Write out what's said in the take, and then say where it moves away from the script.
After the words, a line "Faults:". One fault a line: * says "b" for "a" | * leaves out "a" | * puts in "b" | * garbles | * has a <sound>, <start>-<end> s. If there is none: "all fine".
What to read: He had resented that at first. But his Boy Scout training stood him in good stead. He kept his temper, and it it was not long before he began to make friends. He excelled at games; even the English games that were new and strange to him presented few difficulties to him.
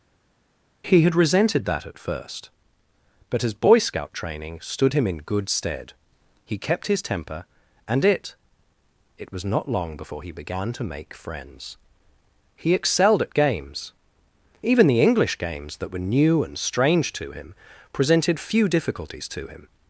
He had resented that at first. But his Boy Scout training stood him in good stead. He kept his temper, and it it was not long before he began to make friends. He excelled at games; even the English games that were new and strange to him presented few difficulties to him.
Faults:
all fine